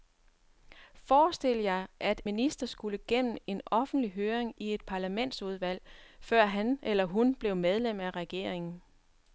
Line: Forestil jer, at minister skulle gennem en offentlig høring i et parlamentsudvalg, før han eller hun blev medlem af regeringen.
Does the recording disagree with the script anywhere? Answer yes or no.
no